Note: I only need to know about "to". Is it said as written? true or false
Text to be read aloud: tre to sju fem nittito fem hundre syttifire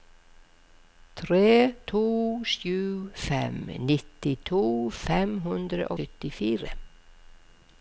true